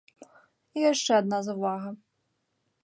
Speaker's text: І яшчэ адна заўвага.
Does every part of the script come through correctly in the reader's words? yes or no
yes